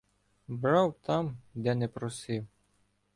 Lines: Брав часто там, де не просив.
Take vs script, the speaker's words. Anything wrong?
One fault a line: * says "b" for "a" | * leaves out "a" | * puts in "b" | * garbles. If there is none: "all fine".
* leaves out "часто"